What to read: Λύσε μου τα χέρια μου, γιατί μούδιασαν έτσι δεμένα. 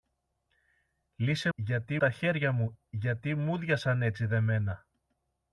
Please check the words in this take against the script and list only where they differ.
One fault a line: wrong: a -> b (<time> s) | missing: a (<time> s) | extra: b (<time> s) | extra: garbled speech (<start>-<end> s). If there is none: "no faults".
wrong: μου -> γιατί (1.5 s)